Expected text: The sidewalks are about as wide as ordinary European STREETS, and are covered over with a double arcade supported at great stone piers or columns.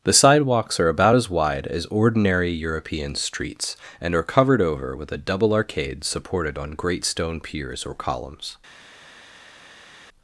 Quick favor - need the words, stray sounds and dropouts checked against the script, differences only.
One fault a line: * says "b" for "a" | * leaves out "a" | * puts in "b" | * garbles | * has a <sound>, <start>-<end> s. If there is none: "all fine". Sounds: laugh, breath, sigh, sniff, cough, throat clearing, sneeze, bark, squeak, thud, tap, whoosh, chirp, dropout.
* says "on" for "at"